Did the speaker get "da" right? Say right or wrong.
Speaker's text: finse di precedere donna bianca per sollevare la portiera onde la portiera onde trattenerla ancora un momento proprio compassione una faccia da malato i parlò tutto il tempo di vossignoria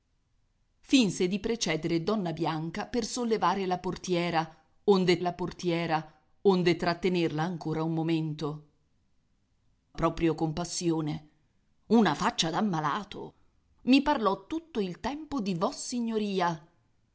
right